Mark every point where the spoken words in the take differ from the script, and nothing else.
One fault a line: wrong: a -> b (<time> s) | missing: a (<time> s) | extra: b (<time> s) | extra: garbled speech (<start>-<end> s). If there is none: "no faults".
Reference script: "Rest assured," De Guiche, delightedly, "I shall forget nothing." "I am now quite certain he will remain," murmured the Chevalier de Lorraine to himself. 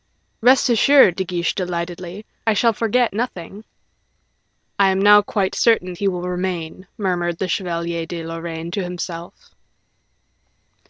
no faults